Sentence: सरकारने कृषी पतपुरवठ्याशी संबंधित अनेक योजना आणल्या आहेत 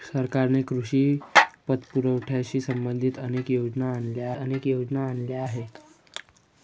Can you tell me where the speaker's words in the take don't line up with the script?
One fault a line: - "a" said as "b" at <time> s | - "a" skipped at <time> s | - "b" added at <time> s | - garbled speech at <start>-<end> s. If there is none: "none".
- "अनेक योजना आणल्या" added at 4.4 s